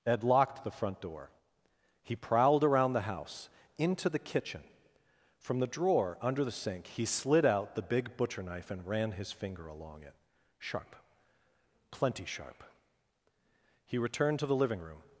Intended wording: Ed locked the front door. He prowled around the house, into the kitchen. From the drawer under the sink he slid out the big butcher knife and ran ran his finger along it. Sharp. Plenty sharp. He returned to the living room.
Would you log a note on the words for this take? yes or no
yes